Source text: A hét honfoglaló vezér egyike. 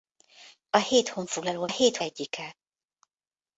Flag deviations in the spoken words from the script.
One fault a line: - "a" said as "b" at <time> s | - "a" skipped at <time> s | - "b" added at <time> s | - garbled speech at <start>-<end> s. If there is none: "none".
- "vezér" said as "hét" at 1.7 s